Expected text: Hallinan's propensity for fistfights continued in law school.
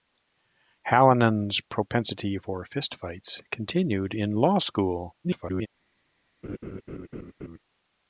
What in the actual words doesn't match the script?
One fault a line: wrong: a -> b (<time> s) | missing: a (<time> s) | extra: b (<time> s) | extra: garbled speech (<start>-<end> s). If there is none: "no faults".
extra: garbled speech (5.2-5.7 s)